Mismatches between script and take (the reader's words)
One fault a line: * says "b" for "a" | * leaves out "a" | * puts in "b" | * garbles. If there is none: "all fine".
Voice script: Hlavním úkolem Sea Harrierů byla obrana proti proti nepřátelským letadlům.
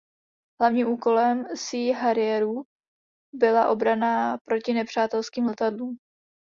* leaves out "proti"